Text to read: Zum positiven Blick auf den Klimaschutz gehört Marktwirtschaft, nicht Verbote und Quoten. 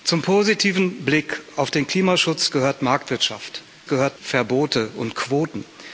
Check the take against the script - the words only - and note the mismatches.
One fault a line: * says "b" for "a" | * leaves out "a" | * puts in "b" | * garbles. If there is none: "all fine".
* says "gehört" for "nicht"